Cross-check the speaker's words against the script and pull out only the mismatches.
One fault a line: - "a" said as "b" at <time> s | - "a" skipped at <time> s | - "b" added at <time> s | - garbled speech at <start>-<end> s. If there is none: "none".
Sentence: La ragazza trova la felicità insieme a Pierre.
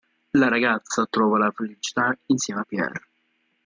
none